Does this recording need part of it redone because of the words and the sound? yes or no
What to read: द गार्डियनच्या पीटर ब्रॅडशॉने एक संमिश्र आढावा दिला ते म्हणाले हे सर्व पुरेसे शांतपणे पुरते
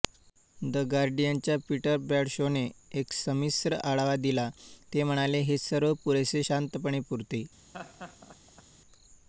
yes